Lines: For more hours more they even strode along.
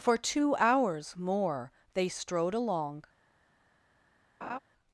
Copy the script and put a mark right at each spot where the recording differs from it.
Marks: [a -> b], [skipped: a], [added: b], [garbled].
For [more -> two] hours more they [skipped: even] strode along.